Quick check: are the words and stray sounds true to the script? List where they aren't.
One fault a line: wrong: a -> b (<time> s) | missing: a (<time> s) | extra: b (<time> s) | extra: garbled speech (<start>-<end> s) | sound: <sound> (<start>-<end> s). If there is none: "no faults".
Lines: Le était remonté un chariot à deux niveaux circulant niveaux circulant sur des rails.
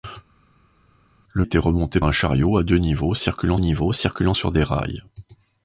no faults